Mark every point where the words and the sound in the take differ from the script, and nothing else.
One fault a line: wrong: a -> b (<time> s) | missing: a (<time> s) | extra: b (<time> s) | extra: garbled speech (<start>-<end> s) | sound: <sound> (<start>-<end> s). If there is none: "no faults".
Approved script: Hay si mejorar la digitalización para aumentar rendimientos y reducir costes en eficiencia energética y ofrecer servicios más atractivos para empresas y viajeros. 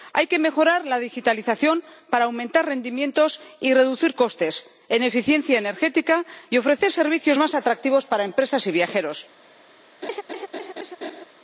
wrong: si -> que (0.3 s)
sound: laugh (10.0-11.3 s)